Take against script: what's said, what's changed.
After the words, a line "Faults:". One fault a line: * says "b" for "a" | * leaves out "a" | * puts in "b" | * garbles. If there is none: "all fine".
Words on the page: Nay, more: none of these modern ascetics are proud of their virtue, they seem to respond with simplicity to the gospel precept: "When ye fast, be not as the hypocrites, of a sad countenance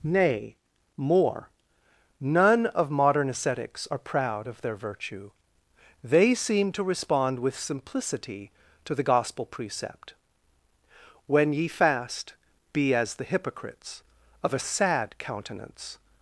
Nay, more: none of modern ascetics are proud of their virtue, they seem to respond with simplicity to the gospel precept: "When ye fast, be as the hypocrites, of a sad countenance
Faults:
* leaves out "these"
* leaves out "not"